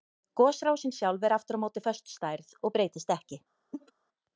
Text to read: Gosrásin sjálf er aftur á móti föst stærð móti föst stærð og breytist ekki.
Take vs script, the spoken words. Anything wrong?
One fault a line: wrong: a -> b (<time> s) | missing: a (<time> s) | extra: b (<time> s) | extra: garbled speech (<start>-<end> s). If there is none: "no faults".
missing: móti föst stærð (2.5 s)